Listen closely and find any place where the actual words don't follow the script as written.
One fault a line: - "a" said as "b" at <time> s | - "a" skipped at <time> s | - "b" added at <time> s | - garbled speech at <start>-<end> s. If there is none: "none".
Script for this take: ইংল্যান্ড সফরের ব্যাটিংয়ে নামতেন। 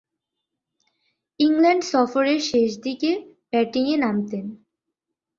- "শেষদিকে" added at 2.4 s